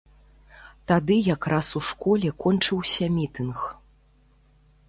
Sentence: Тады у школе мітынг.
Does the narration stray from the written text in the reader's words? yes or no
yes